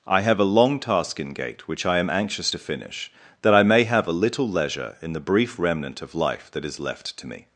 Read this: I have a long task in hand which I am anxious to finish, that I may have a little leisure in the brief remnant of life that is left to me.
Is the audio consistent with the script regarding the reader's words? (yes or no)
no